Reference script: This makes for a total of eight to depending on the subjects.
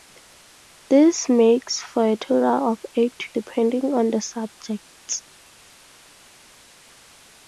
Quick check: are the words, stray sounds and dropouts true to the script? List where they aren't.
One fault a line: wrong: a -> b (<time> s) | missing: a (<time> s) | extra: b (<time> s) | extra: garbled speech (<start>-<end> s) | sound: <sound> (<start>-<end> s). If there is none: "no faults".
no faults